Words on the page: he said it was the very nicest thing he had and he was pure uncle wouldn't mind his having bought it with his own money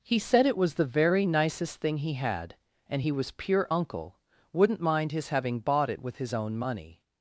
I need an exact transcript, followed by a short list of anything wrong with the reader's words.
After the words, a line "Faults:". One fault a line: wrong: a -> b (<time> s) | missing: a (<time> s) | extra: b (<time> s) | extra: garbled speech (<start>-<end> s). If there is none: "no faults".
he said it was the very nicest thing he had and he was pure uncle wouldn't mind his having bought it with his own money
Faults:
no faults